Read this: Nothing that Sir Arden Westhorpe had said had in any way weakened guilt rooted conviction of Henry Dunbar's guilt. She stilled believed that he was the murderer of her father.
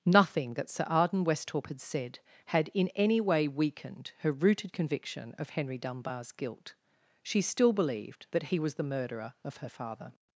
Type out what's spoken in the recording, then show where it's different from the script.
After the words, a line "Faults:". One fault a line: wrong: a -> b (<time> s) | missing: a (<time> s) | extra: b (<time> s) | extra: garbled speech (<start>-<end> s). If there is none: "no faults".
Nothing that Sir Arden Westhorpe had said had in any way weakened her rooted conviction of Henry Dunbar's guilt. She still believed that he was the murderer of her father.
Faults:
wrong: guilt -> her (4.2 s)
wrong: stilled -> still (7.4 s)